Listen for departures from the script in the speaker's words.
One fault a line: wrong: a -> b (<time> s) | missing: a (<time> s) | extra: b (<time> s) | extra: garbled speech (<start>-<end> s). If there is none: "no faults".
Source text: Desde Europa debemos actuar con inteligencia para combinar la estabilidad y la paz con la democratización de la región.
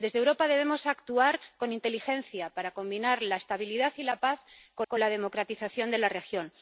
extra: con (4.9 s)